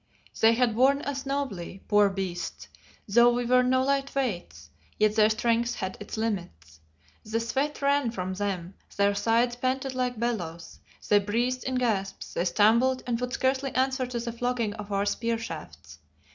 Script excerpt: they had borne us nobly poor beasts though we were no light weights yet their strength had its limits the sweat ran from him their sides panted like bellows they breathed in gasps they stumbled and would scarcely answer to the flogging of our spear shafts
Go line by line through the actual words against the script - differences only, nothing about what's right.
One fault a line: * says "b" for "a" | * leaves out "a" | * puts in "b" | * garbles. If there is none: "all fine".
* says "them" for "him"